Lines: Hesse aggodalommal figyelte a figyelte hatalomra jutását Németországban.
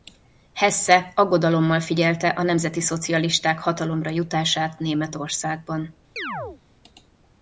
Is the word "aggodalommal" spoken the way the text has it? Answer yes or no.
yes